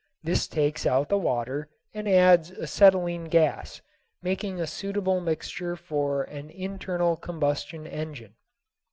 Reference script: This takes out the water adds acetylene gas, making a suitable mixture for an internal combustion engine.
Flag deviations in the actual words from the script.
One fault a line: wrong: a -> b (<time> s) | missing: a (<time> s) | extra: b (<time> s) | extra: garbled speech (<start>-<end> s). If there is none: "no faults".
extra: and (1.9 s)